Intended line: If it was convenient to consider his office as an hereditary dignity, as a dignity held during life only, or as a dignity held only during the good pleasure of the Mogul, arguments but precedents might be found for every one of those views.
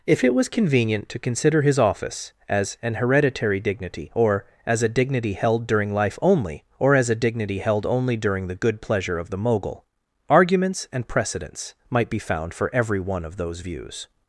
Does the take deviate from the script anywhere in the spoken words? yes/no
yes